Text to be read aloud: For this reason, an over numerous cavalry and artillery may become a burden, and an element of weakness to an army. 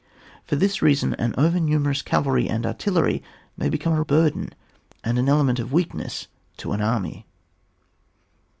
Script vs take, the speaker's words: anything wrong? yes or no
no